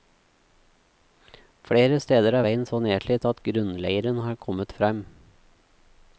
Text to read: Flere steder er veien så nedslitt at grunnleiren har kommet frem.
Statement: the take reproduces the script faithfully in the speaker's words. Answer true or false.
true